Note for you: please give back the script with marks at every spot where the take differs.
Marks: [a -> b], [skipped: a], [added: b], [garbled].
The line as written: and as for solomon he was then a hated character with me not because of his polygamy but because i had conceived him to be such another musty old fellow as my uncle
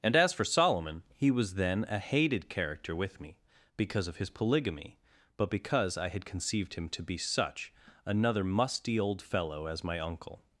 and as for solomon he was then a hated character with me [skipped: not] because of his polygamy but because i had conceived him to be such another musty old fellow as my uncle